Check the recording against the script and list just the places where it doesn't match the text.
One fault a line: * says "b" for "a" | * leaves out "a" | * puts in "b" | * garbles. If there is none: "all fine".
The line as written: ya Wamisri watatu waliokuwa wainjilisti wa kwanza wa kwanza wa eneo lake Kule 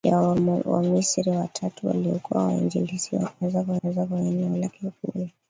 all fine